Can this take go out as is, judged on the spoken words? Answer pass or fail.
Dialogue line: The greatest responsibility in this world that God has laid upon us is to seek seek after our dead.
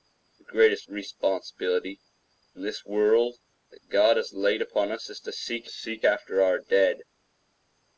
pass